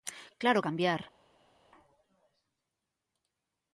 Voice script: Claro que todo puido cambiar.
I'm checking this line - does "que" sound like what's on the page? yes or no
no